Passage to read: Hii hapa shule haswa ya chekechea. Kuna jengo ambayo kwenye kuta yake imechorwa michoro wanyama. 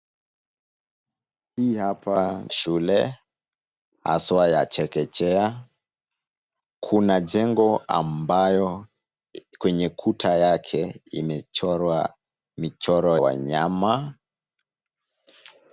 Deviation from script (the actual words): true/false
false